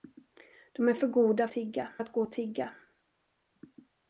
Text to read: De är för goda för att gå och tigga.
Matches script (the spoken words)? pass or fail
fail